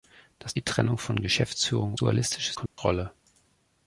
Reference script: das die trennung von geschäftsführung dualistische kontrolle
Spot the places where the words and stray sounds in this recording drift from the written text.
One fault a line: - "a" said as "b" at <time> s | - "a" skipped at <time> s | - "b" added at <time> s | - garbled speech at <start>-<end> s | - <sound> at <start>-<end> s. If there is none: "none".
- dropout at 2.7-2.8 s